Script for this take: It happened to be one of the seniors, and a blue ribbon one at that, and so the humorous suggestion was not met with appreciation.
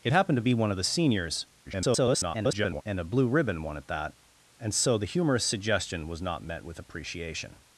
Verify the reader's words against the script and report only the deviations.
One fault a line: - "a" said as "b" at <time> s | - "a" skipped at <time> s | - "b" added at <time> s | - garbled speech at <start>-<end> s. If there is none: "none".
- garbled speech at 1.6-2.8 s